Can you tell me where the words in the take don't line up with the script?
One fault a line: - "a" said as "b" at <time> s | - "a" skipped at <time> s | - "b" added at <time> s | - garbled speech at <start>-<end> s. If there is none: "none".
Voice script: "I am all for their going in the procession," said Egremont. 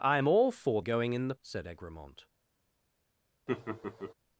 - "their" skipped at 0.8 s
- "procession" skipped at 1.3 s